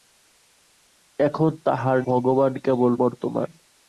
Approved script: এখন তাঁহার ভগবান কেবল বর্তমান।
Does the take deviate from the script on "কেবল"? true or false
false